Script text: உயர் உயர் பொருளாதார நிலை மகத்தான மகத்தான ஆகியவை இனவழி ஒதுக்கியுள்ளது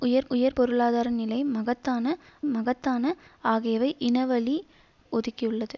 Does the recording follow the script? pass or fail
pass